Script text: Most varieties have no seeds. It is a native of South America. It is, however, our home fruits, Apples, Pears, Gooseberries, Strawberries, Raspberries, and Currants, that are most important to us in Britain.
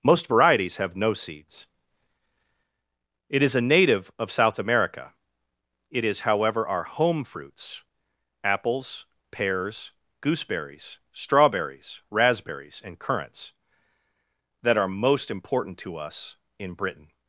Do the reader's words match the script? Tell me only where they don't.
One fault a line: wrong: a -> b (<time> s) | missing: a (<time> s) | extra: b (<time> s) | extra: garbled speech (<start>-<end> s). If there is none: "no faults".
no faults